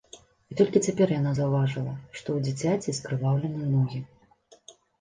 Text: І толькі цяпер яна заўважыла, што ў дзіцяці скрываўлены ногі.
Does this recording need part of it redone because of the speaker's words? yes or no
no